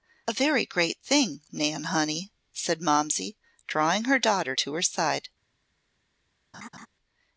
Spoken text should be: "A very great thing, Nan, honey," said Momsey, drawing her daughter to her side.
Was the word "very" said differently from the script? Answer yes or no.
no